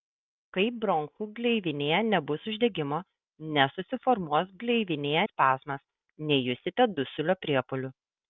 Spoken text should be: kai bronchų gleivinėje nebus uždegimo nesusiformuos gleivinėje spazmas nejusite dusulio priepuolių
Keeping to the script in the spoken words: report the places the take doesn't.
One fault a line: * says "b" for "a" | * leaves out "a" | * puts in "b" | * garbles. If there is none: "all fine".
all fine